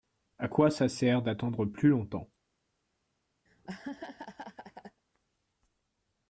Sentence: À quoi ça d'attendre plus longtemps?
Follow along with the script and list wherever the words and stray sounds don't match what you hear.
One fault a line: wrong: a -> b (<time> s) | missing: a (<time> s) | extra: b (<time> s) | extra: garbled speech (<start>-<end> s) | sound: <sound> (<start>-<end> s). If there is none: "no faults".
extra: sert (0.9 s)
sound: laugh (3.5-5.0 s)